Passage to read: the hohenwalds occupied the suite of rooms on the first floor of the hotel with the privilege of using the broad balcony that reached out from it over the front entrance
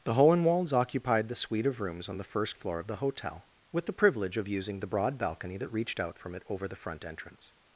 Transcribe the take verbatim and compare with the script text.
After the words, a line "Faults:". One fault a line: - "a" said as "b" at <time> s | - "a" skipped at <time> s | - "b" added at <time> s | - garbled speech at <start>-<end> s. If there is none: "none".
the hohenwalds occupied the suite of rooms on the first floor of the hotel with the privilege of using the broad balcony that reached out from it over the front entrance
Faults:
none